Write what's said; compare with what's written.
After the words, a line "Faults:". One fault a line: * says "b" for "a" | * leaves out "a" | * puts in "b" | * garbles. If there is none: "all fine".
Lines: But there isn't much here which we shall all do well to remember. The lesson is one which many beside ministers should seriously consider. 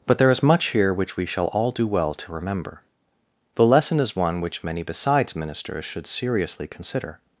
But there is much here which we shall all do well to remember. The lesson is one which many besides ministers should seriously consider.
Faults:
* says "is" for "isn't"
* says "besides" for "beside"